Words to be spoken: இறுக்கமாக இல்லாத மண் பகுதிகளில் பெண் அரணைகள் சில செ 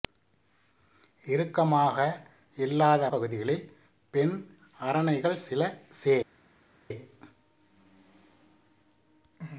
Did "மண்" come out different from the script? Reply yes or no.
yes